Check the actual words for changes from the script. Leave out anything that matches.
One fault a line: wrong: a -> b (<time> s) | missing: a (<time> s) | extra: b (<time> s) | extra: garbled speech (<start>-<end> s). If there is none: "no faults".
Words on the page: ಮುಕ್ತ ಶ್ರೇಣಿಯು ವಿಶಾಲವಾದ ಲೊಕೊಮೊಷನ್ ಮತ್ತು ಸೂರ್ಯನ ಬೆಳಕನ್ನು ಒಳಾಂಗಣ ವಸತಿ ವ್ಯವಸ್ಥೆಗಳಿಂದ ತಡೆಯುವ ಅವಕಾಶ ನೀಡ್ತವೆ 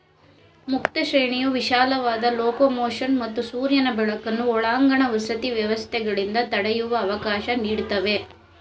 no faults